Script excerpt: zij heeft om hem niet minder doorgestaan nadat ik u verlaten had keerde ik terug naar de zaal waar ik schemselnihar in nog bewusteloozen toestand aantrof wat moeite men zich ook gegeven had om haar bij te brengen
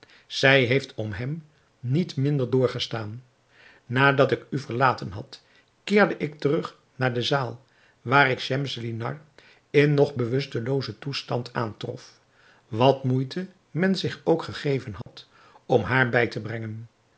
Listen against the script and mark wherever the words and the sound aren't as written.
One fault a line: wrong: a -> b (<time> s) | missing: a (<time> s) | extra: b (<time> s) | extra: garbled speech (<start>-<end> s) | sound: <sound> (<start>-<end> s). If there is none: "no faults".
sound: dropout (15.0-15.1 s)